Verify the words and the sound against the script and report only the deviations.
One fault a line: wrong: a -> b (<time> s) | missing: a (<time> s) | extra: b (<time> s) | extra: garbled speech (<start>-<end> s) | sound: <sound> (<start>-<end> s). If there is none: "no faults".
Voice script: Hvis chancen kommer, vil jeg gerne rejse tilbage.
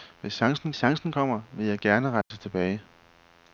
extra: chancen (0.8 s)
sound: dropout (2.2-2.3 s)